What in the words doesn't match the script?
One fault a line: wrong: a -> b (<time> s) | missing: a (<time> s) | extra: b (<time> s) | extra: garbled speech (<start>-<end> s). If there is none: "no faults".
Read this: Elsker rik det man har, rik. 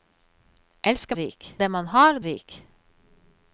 no faults